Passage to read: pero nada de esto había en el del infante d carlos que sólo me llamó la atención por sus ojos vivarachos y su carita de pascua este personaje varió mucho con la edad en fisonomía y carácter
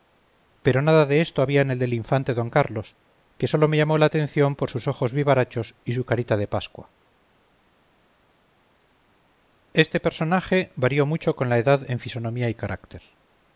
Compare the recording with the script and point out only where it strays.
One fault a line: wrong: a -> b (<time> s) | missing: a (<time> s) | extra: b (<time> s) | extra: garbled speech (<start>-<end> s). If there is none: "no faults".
no faults